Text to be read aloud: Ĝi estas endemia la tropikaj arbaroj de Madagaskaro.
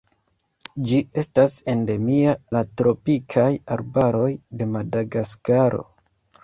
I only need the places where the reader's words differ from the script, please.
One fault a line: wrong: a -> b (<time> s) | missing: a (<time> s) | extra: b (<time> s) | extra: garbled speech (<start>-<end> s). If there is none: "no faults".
no faults